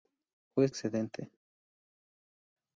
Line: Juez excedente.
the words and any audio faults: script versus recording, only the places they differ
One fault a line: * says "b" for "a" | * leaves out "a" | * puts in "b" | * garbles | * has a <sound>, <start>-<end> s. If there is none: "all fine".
all fine